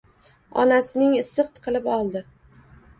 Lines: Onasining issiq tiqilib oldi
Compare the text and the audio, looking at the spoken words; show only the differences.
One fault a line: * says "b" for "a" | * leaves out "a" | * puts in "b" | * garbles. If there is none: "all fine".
all fine